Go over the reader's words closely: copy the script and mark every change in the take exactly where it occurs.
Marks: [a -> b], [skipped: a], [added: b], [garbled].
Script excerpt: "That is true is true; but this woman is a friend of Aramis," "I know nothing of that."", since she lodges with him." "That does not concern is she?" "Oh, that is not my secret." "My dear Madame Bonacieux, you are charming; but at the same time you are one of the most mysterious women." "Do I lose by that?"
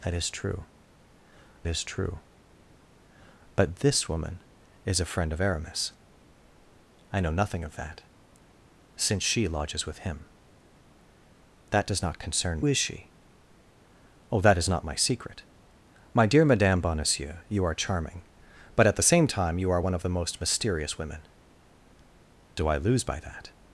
"That is true is true; but this woman is a friend of Aramis," "I know nothing of that."", since she lodges with him." "That does not concern is she?" "Oh, that is not my secret." "My dear Madame Bonacieux, you are charming; but at the same time you are one of the most mysterious women." "Do I lose by that?"